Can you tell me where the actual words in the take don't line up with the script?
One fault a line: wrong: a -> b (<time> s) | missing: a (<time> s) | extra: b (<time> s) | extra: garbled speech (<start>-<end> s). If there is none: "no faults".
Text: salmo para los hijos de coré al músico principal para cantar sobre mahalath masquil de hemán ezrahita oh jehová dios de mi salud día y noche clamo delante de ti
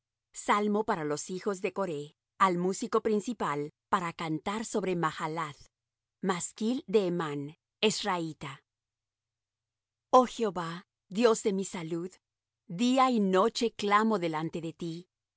no faults